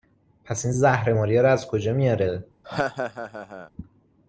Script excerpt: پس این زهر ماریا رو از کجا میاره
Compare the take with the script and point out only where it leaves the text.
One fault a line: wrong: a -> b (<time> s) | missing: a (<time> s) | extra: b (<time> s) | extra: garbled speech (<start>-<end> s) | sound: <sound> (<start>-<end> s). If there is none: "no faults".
sound: laugh (2.6-3.7 s)